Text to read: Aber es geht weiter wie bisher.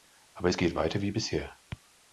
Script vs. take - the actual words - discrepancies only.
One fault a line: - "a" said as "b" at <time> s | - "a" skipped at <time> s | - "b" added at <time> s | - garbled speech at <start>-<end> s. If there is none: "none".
none